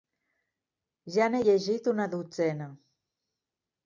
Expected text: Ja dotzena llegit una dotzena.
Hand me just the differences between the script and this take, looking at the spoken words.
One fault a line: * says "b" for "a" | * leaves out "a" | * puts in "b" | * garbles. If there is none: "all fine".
* says "n'he" for "dotzena"